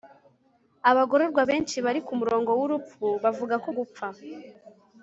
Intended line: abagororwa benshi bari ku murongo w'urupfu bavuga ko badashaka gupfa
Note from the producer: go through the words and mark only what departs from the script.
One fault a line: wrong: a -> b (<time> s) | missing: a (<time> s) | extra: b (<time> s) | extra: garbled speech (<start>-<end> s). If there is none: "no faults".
missing: badashaka (3.7 s)